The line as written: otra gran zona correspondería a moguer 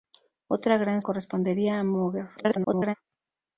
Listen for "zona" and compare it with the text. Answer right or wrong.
wrong